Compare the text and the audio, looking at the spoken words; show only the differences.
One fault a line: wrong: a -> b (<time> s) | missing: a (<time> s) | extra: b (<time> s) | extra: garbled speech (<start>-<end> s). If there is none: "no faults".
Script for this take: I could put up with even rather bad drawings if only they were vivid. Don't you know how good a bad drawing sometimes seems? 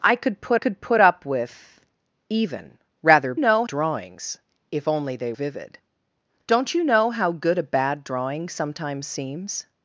extra: could put (0.5 s)
wrong: bad -> know (3.4 s)
missing: were (5.3 s)